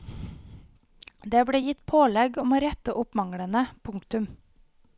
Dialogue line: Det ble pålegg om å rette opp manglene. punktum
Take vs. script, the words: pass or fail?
fail